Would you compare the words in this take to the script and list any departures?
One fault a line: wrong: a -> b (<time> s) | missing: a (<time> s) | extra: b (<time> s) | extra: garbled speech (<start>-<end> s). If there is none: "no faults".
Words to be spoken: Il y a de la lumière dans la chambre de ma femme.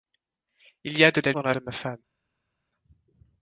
missing: lumière (1.3 s)
missing: chambre (1.5 s)